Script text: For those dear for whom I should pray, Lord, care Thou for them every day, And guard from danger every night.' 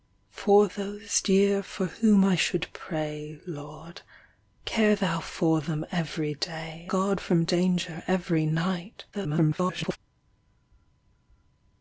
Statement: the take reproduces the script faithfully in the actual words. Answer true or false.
false